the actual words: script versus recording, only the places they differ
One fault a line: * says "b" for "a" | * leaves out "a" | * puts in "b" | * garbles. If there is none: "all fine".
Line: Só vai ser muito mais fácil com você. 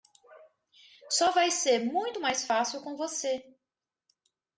all fine